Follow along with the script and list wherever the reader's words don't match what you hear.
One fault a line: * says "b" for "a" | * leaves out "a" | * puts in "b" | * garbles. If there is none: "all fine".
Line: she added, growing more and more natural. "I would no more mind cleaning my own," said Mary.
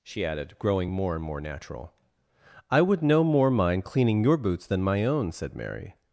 * puts in "your boots than"